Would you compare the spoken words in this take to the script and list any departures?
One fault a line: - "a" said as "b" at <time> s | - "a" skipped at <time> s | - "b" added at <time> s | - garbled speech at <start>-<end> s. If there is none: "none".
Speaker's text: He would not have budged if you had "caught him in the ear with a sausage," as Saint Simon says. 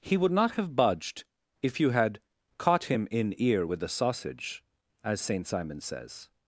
- "the" skipped at 3.4 s